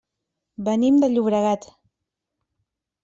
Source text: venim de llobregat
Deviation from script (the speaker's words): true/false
false